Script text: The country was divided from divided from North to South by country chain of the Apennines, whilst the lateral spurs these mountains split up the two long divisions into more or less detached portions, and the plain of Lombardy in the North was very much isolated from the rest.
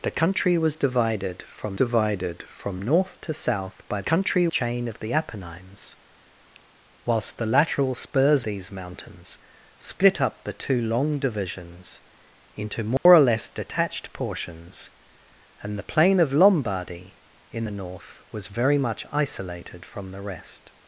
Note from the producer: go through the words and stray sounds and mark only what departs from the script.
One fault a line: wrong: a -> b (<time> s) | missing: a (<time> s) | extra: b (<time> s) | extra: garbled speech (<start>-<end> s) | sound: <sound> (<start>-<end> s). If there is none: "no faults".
sound: dropout (13.0-13.1 s)